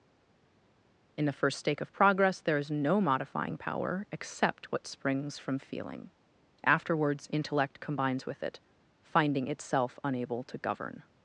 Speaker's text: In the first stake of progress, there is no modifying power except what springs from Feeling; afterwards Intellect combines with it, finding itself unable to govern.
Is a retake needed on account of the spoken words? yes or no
no